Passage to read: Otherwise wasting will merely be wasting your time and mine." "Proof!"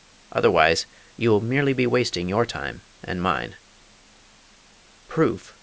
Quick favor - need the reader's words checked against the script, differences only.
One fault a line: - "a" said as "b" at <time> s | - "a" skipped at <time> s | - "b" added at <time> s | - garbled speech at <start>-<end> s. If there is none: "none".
- "wasting" said as "you" at 1.1 s